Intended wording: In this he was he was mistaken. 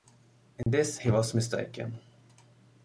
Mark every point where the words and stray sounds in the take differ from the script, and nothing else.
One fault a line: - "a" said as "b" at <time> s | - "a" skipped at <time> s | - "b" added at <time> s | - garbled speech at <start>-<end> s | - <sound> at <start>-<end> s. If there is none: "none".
- dropout at 0.6-0.7 s
- "he was" skipped at 1.3 s